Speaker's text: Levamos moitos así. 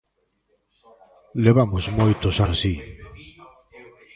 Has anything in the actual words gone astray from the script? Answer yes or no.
no